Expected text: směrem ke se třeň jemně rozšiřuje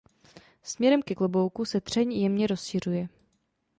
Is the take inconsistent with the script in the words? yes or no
yes